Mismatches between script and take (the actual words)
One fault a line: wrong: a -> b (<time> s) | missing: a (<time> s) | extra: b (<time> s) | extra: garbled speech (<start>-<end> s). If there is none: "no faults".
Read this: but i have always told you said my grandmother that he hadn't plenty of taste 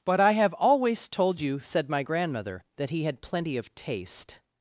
wrong: hadn't -> had (3.0 s)